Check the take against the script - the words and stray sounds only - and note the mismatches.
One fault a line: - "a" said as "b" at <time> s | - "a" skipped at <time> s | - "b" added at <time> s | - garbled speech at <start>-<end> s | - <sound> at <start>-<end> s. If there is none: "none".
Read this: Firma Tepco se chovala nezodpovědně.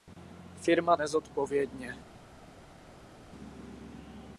- "Tepco se chovala" skipped at 1.0 s